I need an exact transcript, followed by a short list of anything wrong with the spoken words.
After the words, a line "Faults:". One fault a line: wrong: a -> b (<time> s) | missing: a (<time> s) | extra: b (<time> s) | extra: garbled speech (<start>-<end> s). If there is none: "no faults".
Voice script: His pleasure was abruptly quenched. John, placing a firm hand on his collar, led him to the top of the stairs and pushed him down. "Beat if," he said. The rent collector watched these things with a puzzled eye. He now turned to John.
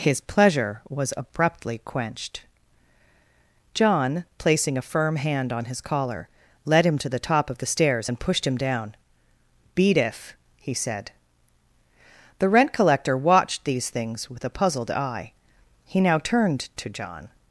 His pleasure was abruptly quenched. John, placing a firm hand on his collar, led him to the top of the stairs and pushed him down. "Beat if," he said. The rent collector watched these things with a puzzled eye. He now turned to John.
Faults:
no faults